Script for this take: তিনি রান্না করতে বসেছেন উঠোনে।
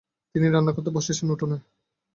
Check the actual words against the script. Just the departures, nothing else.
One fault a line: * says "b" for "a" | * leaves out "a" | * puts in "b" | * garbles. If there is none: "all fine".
all fine